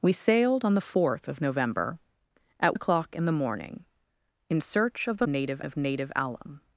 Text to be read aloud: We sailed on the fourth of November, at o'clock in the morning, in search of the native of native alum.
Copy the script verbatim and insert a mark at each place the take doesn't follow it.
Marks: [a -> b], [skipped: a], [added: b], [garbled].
We sailed on the fourth of November, at o'clock in the morning, in search of the native of native alum.